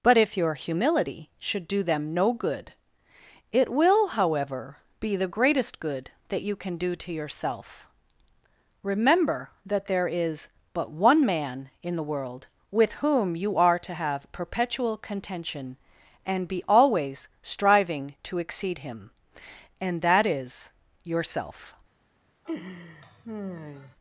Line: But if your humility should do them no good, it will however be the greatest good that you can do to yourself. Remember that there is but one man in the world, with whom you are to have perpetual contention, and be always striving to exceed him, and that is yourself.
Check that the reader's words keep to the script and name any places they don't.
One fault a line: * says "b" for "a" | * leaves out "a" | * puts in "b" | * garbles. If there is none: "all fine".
all fine